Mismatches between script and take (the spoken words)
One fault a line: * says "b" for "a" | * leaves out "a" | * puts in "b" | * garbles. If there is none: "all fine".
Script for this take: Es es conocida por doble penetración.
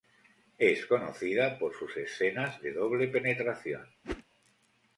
* leaves out "es"
* puts in "sus escenas de"